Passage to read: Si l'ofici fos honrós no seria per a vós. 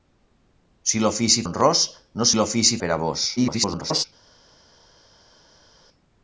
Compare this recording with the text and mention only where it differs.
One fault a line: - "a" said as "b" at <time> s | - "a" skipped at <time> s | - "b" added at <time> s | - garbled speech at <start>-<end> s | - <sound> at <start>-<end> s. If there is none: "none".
- "fos" skipped at 1.4 s
- "seria" said as "l'ofici" at 2.4 s
- garbled speech at 3.4-4.1 s